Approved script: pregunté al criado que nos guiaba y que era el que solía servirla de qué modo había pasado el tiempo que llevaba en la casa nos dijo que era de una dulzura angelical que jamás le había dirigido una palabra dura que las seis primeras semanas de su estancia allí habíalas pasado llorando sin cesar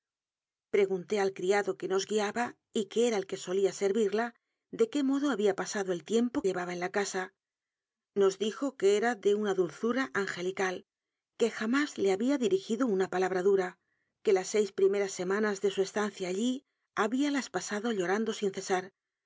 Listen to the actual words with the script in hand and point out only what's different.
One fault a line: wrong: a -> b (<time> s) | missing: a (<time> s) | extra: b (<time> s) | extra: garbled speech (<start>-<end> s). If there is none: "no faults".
missing: que (6.4 s)